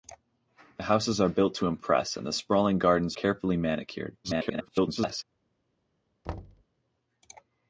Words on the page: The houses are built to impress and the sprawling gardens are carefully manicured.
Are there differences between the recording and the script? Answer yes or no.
yes